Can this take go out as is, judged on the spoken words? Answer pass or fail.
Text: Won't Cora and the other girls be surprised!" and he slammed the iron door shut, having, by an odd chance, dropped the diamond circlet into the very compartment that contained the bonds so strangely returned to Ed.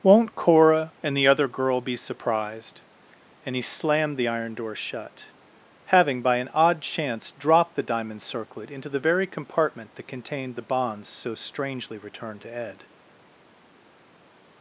fail